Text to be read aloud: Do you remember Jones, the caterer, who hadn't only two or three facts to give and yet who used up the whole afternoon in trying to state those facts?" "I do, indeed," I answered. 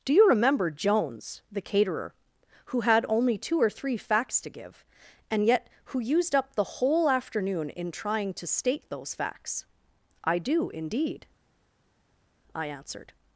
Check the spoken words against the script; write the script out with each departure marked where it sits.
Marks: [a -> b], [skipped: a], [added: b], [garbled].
Do you remember Jones, the caterer, who [hadn't -> had] only two or three facts to give and yet who used up the whole afternoon in trying to state those facts?" "I do, indeed," I answered.